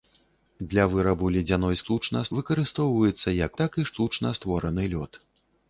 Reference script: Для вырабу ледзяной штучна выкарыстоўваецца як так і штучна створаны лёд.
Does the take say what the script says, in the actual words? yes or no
yes